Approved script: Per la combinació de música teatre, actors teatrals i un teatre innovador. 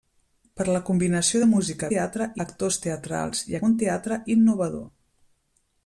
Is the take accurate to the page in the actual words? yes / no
yes